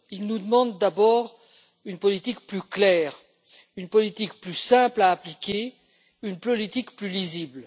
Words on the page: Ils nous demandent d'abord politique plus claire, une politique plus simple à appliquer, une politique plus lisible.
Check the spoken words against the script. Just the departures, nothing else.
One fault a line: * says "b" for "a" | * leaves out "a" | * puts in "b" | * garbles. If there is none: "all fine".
* puts in "une"